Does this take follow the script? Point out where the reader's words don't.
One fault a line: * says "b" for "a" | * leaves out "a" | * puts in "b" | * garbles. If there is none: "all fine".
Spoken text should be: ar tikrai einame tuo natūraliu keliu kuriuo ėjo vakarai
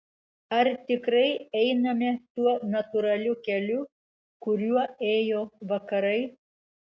all fine